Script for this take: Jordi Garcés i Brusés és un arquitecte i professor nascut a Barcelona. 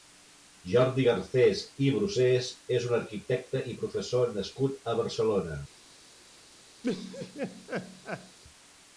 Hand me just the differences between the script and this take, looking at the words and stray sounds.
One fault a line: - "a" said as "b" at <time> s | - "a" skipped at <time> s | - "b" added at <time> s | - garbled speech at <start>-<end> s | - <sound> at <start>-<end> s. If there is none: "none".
- laugh at 6.8-8.4 s